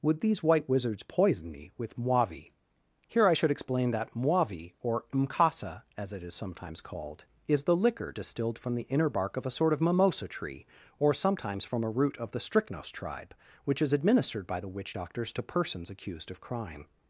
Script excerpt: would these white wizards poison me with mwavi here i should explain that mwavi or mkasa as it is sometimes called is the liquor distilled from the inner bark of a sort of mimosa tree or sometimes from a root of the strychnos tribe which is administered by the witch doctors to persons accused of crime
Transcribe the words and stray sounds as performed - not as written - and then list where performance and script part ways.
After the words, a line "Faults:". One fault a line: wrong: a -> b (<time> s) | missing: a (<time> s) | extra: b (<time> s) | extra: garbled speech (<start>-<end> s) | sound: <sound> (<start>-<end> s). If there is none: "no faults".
would these white wizards poison me with mwavi here i should explain that mwavi or mkasa as it is sometimes called is the liquor distilled from the inner bark of a sort of mimosa tree or sometimes from a root of the strychnos tribe which is administered by the witch doctors to persons accused of crime
Faults:
no faults